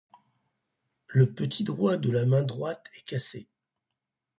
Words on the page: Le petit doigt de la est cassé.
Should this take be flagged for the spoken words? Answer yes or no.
yes